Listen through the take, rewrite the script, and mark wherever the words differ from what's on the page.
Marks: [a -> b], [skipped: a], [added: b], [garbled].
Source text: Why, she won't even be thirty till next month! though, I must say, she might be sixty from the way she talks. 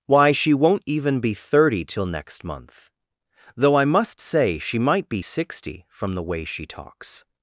Why, she won't even be thirty till next month! though, I must say, she might be sixty from the way she talks.